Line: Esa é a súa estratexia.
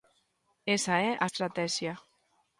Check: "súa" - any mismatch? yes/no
yes